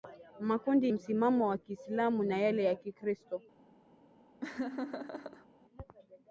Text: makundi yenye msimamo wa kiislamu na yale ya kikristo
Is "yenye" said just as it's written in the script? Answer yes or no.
no